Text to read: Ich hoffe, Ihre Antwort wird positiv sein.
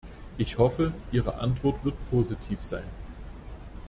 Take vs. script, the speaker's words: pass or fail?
pass